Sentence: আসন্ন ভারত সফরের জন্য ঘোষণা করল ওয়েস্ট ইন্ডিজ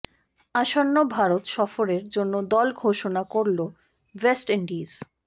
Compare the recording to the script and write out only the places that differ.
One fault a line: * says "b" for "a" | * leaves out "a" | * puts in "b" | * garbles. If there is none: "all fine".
* puts in "দল"